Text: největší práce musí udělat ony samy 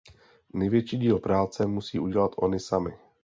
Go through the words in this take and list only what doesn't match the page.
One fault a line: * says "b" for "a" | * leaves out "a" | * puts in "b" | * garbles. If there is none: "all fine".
* puts in "díl"